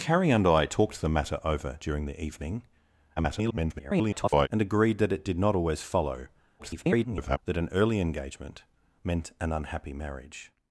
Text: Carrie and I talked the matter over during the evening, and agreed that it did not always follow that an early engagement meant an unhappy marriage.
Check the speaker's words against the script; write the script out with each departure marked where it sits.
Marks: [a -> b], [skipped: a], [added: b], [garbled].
Carrie and I talked the matter over during the evening, [garbled] and agreed that it did not always follow [garbled] that an early engagement meant an unhappy marriage.